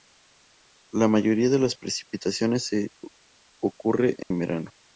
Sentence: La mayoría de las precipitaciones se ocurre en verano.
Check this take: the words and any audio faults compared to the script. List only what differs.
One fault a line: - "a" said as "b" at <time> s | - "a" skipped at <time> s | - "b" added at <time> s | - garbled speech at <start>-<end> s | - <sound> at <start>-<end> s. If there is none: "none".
- dropout at 4.2-4.3 s